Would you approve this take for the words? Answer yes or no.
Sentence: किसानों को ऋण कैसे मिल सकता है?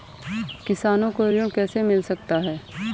yes